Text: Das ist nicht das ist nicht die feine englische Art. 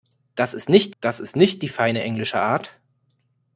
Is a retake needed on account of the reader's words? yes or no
no